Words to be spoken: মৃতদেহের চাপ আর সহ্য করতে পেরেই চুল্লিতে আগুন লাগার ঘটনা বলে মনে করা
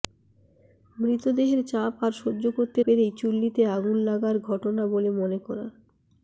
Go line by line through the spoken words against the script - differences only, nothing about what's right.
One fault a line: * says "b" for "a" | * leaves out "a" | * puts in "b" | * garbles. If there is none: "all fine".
all fine